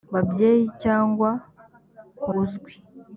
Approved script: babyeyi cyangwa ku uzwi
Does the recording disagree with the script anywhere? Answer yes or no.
no